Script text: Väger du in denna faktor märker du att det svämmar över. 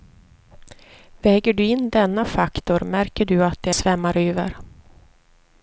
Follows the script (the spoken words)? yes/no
yes